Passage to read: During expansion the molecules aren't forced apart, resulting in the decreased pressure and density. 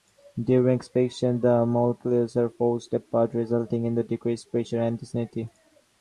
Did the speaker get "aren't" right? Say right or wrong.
wrong